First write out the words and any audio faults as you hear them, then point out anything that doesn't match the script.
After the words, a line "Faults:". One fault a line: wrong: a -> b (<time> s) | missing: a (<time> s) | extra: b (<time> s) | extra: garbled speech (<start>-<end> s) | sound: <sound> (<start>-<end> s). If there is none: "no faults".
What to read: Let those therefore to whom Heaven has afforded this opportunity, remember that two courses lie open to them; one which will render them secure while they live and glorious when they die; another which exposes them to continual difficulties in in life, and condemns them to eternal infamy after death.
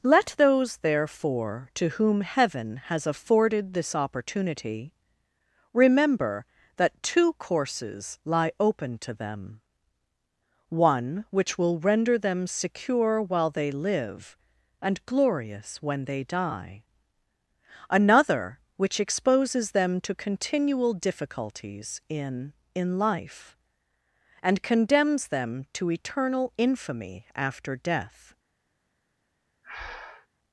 Let those therefore to whom Heaven has afforded this opportunity, remember that two courses lie open to them; one which will render them secure while they live and glorious when they die; another which exposes them to continual difficulties in in life, and condemns them to eternal infamy after death.
Faults:
sound: breath (29.6-30.3 s)